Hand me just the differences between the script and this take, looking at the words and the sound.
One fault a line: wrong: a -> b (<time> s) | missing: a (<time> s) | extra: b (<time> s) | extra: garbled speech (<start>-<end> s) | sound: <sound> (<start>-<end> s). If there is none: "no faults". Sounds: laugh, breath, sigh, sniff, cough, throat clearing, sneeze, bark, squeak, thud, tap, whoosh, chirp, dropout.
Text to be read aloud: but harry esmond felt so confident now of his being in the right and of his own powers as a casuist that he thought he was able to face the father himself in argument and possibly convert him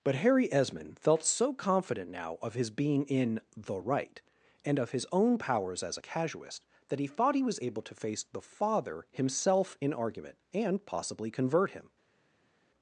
no faults